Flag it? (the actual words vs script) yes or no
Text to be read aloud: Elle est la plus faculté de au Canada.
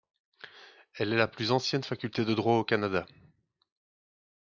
yes